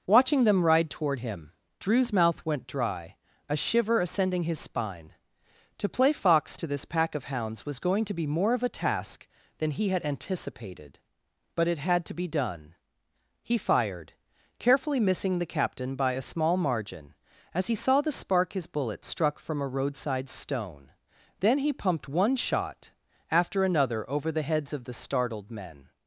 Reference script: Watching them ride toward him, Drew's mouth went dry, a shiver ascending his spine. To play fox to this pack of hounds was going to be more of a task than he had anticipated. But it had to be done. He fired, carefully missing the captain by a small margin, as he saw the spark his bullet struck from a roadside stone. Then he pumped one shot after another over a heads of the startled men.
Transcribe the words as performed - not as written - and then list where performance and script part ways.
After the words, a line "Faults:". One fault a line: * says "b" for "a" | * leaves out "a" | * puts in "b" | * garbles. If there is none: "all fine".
Watching them ride toward him, Drew's mouth went dry, a shiver ascending his spine. To play fox to this pack of hounds was going to be more of a task than he had anticipated. But it had to be done. He fired, carefully missing the captain by a small margin, as he saw the spark his bullet struck from a roadside stone. Then he pumped one shot after another over the heads of the startled men.
Faults:
* says "the" for "a"